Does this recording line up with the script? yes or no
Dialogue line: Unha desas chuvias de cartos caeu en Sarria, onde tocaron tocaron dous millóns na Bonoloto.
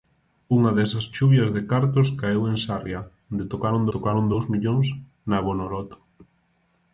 yes